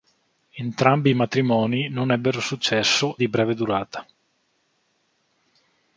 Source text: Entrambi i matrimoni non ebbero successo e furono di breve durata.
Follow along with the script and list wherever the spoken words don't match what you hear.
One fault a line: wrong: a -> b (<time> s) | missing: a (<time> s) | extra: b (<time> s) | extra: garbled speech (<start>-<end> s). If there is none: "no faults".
missing: e furono (3.2 s)